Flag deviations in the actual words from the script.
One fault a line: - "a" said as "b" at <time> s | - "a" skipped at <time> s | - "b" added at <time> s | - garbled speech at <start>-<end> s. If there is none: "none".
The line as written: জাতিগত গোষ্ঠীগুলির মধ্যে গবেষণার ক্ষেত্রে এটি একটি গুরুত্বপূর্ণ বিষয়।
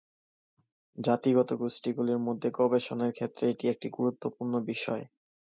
none